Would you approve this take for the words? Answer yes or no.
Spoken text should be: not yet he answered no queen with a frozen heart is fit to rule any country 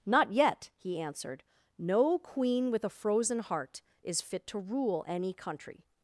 yes